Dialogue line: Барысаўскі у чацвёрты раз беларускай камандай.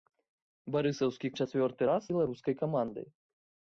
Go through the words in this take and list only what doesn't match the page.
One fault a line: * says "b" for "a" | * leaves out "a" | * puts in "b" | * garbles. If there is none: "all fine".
all fine